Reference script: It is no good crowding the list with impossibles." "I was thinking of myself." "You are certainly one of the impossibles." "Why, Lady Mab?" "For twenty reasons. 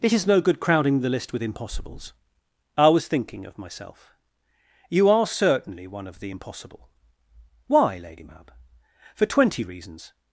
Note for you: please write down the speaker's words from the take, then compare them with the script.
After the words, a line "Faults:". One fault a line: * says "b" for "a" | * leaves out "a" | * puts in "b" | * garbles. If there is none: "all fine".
It is no good crowding the list with impossibles." "I was thinking of myself." "You are certainly one of the impossible." "Why, Lady Mab?" "For twenty reasons.
Faults:
* says "impossible" for "impossibles"